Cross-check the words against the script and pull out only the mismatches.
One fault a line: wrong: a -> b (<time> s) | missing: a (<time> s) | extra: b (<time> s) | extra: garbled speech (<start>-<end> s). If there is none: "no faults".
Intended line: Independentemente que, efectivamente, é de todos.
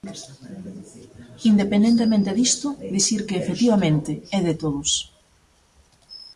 extra: disto dicir (2.4 s)